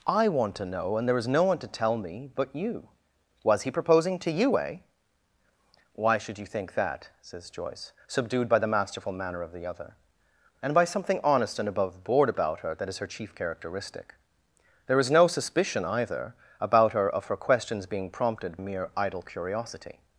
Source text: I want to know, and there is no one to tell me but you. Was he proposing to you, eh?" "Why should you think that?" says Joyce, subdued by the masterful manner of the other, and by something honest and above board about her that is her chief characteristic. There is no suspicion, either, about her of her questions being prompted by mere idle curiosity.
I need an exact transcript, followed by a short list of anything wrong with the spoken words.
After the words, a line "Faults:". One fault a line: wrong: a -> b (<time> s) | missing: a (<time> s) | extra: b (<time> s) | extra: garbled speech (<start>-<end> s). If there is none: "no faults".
I want to know, and there is no one to tell me but you. Was he proposing to you, eh?" "Why should you think that?" says Joyce, subdued by the masterful manner of the other, and by something honest and above board about her that is her chief characteristic. There is no suspicion, either, about her of her questions being prompted mere idle curiosity.
Faults:
missing: by (18.6 s)